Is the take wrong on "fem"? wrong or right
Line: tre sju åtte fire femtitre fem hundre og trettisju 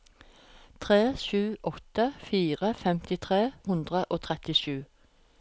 wrong